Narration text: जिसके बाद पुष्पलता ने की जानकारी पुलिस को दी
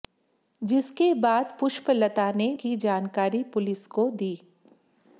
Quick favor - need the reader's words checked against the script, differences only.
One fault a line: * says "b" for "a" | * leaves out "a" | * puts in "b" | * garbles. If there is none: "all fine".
all fine